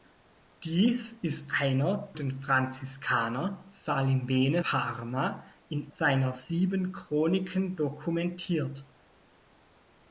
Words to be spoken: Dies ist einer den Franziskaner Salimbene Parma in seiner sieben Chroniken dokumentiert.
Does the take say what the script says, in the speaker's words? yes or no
yes